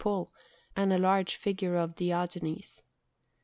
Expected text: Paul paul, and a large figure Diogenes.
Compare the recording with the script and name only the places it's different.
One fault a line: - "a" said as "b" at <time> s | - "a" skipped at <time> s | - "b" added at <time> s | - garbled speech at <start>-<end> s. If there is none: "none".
- "paul" skipped at 0.3 s
- "of" added at 1.8 s